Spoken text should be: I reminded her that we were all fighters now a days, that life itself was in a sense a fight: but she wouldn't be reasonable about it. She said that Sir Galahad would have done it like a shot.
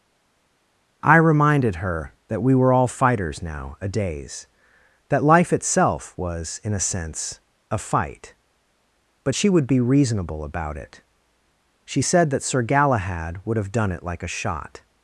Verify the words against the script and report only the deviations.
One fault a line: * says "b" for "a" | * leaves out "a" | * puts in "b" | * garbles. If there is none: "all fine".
* says "would" for "wouldn't"